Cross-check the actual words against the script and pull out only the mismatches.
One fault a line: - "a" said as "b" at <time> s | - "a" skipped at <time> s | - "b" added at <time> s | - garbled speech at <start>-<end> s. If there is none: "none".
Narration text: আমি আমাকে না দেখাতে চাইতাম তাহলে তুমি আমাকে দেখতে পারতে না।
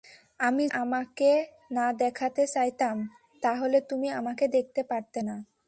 none